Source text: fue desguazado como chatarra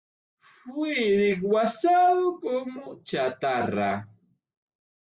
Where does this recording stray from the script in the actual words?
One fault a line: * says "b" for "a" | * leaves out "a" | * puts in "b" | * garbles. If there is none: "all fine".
all fine